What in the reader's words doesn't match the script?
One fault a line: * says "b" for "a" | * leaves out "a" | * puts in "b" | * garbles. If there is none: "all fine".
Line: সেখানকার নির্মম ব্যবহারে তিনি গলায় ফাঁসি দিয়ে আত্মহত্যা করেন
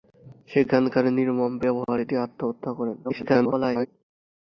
* leaves out "তিনি গলায় ফাঁসি"
* garbles